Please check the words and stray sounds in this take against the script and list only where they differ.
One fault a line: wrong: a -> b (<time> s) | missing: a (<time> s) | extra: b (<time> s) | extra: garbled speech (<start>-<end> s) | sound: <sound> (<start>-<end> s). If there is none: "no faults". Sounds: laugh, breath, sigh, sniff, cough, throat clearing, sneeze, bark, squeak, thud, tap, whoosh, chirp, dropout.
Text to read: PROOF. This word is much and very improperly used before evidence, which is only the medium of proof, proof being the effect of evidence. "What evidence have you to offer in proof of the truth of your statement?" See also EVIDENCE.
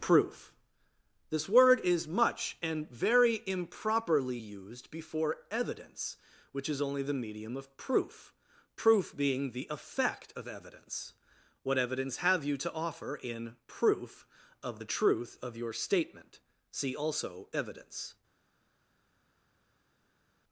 no faults